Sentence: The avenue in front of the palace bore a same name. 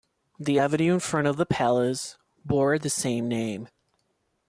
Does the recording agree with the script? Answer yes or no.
no